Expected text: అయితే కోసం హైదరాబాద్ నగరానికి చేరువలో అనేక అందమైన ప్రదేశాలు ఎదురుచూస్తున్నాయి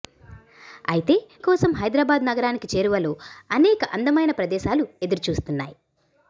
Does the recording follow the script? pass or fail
pass